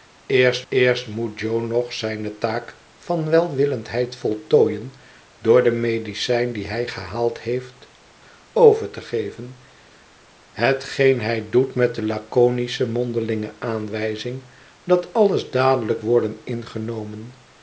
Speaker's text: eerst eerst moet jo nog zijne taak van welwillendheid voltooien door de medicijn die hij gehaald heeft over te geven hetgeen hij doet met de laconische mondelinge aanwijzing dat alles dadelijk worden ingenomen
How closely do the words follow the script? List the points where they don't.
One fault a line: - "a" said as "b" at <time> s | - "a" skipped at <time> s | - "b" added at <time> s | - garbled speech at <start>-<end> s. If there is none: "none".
none